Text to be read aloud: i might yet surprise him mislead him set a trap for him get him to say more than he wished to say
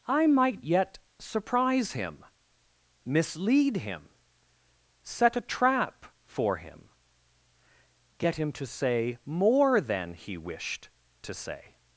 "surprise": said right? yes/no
yes